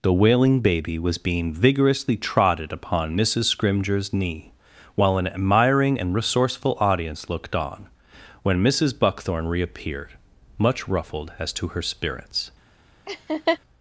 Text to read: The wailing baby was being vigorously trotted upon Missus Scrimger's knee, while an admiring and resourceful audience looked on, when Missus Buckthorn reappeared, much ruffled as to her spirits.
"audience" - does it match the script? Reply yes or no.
yes